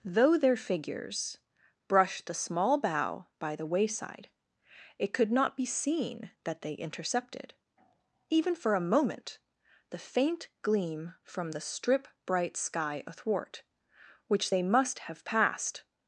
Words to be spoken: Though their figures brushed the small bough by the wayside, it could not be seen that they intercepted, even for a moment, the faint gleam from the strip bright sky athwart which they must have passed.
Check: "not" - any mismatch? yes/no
no